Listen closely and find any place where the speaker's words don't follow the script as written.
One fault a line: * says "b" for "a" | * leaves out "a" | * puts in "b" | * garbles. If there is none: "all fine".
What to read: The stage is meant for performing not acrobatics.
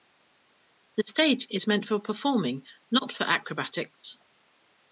* puts in "for"